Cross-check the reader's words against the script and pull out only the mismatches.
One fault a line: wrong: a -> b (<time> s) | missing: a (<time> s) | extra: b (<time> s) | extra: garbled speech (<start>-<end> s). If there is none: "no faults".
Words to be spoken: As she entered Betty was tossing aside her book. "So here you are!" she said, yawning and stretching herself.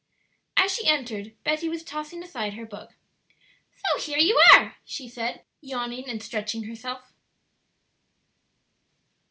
no faults